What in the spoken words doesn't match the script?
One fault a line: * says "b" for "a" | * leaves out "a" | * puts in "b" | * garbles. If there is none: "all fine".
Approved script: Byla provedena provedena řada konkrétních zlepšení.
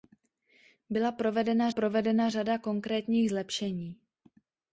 all fine